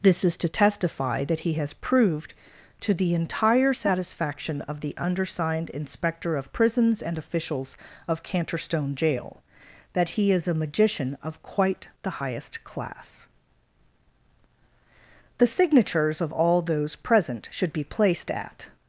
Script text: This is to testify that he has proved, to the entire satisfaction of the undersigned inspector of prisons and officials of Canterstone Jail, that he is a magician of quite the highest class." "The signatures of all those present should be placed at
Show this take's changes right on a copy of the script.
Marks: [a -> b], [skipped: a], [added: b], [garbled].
This is to testify that he has proved, to the entire satisfaction of the undersigned inspector of prisons and officials of Canterstone Jail, that he is a magician of quite the highest class." "The signatures of all those present should be placed at